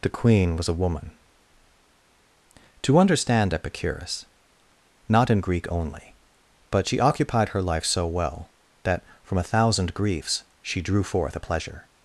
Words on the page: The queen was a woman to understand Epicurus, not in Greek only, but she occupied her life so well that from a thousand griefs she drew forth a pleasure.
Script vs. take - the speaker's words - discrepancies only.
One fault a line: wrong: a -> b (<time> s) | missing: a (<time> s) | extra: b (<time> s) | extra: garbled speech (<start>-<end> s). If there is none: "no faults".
no faults